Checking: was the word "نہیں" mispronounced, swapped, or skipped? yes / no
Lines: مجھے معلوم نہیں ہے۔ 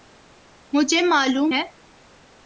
yes